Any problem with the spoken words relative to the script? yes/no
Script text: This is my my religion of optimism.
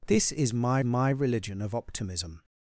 no